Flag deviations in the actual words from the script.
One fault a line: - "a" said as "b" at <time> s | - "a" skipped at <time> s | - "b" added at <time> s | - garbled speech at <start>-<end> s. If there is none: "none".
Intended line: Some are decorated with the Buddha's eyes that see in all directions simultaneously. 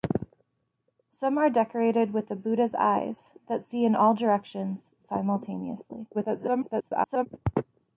- garbled speech at 6.1-7.3 s